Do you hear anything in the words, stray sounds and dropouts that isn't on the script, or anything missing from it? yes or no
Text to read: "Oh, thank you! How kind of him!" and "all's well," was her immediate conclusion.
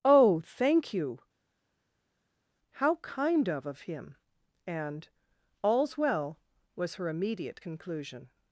yes